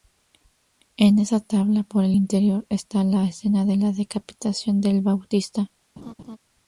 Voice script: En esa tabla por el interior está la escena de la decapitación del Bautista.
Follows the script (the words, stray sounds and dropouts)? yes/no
no